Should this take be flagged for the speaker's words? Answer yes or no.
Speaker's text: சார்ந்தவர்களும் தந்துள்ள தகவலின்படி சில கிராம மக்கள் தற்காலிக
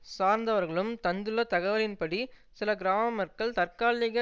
no